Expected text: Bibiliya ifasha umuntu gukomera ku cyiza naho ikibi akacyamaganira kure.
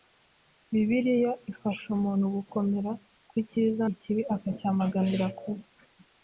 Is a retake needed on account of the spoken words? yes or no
yes